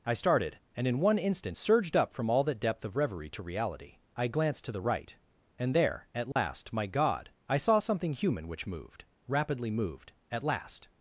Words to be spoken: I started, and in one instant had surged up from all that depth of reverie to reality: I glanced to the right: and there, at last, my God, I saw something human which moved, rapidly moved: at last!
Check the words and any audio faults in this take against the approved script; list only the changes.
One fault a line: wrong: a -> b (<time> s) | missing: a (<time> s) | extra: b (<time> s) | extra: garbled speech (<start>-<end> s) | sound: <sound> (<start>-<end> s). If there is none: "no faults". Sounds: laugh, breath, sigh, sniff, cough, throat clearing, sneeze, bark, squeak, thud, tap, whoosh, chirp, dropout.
missing: had (1.6 s)
sound: dropout (6.3-6.4 s)